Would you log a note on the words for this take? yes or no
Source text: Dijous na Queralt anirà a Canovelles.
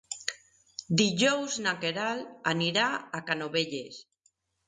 no